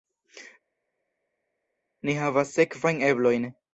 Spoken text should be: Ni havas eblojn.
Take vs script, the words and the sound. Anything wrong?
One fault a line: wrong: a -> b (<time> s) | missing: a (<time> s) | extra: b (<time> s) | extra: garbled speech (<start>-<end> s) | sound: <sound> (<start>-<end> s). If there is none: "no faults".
extra: sekvajn (2.6 s)